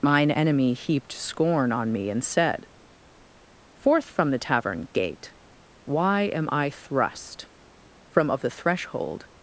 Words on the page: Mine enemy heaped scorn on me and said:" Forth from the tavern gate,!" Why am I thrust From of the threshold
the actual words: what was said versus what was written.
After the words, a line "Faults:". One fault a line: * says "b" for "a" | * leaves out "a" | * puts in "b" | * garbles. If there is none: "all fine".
Mine enemy heaped scorn on me and said:" Forth from the tavern gate,!" Why am I thrust From of the threshold
Faults:
all fine